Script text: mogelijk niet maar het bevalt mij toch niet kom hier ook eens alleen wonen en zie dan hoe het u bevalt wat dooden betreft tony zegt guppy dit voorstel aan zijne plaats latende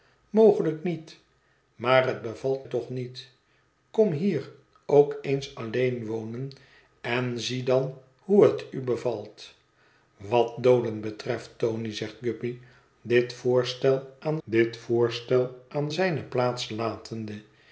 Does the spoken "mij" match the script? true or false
false